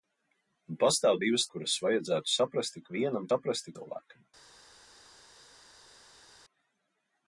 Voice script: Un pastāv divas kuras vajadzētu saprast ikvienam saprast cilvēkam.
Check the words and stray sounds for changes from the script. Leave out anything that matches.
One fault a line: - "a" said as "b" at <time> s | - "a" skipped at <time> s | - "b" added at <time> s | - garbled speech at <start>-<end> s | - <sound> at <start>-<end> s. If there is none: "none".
none